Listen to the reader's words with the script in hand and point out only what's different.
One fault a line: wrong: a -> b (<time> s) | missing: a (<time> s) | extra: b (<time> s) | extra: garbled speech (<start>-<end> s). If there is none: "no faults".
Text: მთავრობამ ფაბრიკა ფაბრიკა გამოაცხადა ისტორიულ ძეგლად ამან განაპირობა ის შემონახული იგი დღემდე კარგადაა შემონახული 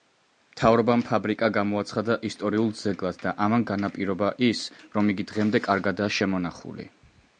missing: ფაბრიკა (1.5 s)
extra: და (3.2 s)
wrong: შემონახული -> რომ (5.0 s)